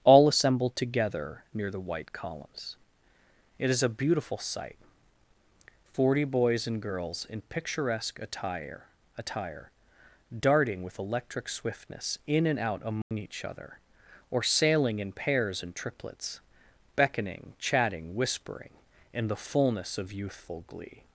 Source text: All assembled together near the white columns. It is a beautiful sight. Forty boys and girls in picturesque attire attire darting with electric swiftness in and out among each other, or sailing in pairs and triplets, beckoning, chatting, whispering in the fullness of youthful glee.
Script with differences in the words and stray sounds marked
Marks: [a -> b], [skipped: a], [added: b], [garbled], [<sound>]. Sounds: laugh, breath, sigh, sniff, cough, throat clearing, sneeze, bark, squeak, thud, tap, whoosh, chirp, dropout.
All assembled together near the white columns. It is a beautiful sight. Forty boys and girls in picturesque attire attire darting with electric swiftness in and out among [dropout] each other, or sailing in pairs and triplets, beckoning, chatting, whispering in the fullness of youthful glee.